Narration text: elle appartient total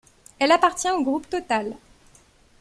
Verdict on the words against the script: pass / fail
fail